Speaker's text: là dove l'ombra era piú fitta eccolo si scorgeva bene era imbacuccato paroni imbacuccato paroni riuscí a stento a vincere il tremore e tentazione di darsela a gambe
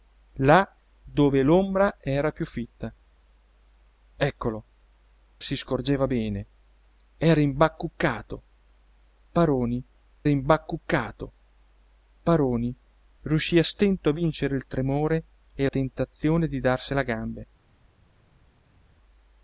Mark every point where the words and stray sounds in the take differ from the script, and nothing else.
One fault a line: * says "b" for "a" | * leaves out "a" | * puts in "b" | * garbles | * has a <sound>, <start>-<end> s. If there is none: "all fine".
all fine